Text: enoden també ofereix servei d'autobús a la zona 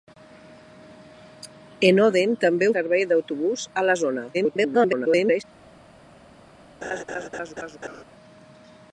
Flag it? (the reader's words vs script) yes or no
yes